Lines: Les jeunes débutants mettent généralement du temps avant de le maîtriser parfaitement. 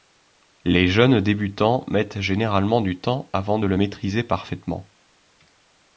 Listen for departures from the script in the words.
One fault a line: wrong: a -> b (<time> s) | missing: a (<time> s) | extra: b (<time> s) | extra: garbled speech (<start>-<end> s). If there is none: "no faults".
no faults